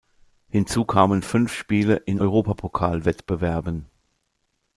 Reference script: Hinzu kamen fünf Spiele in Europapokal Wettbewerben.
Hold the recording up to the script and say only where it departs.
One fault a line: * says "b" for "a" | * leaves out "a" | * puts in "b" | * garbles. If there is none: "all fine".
all fine